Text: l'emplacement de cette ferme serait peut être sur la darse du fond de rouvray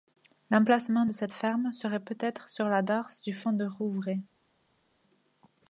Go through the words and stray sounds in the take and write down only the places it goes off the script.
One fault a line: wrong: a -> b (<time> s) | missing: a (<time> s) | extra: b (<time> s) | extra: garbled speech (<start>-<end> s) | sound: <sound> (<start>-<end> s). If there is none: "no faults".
no faults